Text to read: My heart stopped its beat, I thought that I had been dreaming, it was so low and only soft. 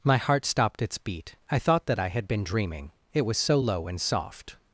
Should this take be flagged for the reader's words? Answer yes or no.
yes